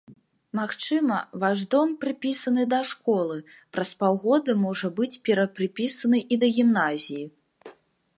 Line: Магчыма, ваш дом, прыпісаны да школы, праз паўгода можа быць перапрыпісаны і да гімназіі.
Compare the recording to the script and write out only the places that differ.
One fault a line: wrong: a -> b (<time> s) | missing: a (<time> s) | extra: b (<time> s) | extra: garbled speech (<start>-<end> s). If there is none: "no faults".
no faults